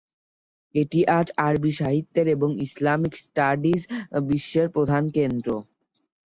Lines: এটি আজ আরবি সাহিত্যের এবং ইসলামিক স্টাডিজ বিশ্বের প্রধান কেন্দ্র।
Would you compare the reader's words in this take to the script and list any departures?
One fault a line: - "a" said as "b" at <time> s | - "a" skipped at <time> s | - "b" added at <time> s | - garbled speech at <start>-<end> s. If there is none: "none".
none